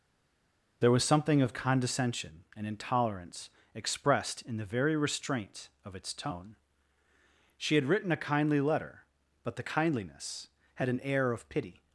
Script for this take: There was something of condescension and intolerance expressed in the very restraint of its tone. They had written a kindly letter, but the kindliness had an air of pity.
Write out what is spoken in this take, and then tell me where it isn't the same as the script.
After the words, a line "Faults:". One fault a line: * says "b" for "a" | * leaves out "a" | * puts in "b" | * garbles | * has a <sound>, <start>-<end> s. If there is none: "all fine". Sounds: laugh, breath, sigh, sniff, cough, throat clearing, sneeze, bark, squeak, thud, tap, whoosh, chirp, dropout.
There was something of condescension and intolerance expressed in the very restraint of its tone. She had written a kindly letter, but the kindliness had an air of pity.
Faults:
* says "She" for "They"